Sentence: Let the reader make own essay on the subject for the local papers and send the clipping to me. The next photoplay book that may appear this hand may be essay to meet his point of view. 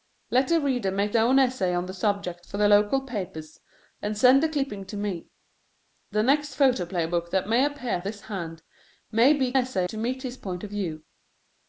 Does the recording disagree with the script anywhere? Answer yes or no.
no